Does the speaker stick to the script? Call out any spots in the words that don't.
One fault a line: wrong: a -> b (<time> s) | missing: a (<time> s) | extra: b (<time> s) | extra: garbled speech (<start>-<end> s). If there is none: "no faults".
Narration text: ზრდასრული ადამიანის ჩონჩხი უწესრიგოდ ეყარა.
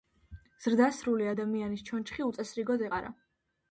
no faults